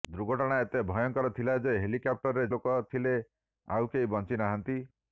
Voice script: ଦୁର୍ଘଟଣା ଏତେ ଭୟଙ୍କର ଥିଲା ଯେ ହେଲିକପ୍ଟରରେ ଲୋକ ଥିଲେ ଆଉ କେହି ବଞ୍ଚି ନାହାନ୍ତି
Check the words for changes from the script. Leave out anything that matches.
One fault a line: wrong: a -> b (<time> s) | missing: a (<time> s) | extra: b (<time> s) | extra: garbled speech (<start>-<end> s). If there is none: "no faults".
no faults